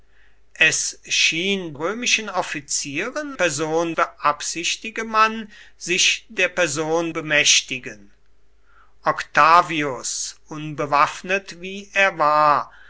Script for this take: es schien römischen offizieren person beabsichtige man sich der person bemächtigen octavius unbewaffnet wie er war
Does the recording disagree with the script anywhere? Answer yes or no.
no